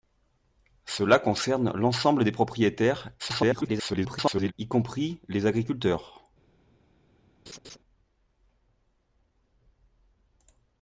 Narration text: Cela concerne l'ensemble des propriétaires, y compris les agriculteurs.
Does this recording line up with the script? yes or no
no